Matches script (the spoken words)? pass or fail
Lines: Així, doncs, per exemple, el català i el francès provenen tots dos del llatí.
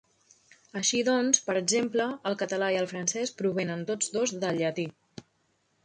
pass